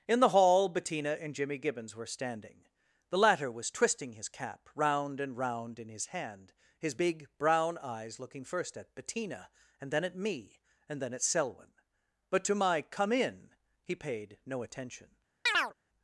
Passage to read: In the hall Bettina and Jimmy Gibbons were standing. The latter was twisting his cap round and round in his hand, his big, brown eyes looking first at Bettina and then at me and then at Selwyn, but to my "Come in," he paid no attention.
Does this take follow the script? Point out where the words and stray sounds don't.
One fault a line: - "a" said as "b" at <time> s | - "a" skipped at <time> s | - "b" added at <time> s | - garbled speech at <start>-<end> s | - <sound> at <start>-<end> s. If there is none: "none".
- chirp at 15.5-15.7 s